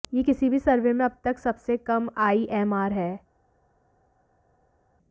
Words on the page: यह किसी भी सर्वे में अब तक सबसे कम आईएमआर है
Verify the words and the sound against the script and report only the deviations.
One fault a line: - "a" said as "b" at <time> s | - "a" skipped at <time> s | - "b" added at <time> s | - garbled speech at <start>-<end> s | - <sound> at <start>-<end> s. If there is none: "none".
none